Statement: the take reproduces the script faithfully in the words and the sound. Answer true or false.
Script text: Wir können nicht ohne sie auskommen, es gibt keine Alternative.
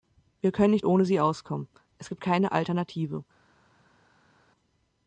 true